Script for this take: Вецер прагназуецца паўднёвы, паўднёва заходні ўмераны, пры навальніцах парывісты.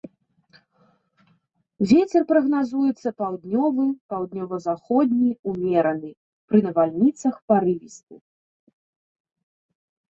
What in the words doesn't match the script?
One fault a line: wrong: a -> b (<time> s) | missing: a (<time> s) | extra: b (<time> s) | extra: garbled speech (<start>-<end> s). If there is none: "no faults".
no faults